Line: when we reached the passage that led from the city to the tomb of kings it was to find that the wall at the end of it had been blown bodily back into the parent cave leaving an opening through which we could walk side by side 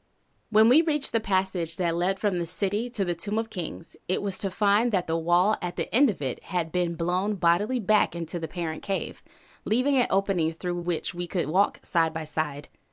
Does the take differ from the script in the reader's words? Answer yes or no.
no